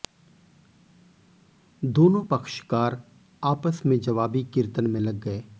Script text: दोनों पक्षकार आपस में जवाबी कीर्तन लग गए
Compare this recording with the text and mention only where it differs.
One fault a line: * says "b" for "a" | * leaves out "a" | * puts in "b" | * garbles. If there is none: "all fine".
* puts in "में"